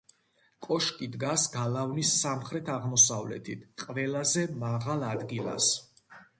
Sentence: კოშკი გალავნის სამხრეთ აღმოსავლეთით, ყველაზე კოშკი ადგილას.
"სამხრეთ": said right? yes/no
yes